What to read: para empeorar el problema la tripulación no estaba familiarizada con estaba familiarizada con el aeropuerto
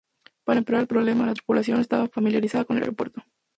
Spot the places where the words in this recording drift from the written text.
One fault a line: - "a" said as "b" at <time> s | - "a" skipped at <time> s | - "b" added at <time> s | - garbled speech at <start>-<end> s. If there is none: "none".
- "estaba familiarizada con" skipped at 2.8 s